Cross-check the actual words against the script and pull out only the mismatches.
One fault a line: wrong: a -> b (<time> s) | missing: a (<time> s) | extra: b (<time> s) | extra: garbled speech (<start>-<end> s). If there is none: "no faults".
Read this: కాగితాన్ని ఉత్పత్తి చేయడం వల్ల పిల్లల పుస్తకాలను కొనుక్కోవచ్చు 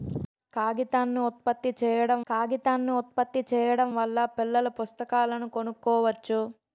extra: కాగితాన్ని ఉత్పత్తి చేయడం (2.3 s)